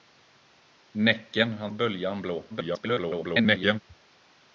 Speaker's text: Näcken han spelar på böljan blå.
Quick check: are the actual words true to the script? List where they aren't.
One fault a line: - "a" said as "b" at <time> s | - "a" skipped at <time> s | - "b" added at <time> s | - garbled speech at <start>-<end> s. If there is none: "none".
- "spelar på" skipped at 1.7 s
- garbled speech at 2.5-3.8 s